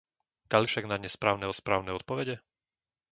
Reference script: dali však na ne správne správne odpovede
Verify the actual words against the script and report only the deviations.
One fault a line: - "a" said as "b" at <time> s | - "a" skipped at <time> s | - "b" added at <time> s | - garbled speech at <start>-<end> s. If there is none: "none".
none